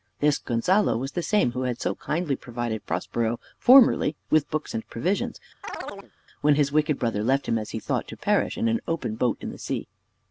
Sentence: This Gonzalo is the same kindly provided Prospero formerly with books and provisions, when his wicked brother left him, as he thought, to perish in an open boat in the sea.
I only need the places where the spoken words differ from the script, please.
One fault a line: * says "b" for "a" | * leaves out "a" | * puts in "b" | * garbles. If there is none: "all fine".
* says "was" for "is"
* puts in "who had so"